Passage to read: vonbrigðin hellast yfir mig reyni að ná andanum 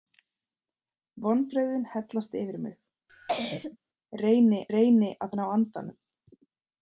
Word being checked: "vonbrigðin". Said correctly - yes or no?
yes